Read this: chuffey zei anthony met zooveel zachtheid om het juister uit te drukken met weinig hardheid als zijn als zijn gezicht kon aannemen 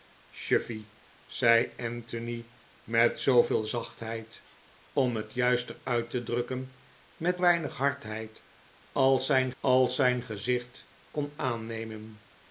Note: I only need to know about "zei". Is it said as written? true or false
true